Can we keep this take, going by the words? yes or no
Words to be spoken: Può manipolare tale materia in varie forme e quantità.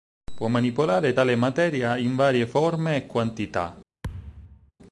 yes